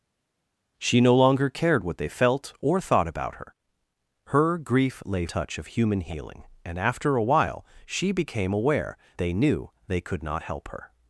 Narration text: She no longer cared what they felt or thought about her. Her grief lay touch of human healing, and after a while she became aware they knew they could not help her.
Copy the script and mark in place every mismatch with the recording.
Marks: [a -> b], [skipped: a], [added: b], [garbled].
She no longer cared what they felt or thought about her. Her grief lay touch of human healing, and after a while she became aware they knew they could not help her.